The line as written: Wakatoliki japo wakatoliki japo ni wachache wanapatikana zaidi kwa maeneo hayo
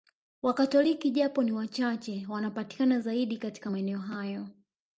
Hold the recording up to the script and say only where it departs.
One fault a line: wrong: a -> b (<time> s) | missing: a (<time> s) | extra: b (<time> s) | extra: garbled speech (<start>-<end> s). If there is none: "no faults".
missing: wakatoliki japo (1.4 s)
wrong: kwa -> katika (3.4 s)